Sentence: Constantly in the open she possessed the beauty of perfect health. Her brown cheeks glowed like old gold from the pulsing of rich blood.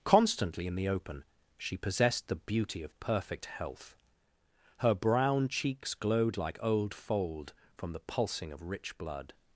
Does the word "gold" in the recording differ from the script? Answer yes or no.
yes